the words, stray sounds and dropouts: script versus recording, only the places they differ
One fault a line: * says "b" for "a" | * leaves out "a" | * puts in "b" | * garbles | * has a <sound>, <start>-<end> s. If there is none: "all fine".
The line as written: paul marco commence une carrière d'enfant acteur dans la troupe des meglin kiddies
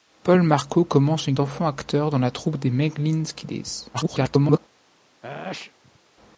* leaves out "carrière"
* garbles
* has a sneeze, 5.2-6.0 s